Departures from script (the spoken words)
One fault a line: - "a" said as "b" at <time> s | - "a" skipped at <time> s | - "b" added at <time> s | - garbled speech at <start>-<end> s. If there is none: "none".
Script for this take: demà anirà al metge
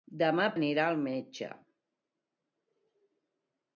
none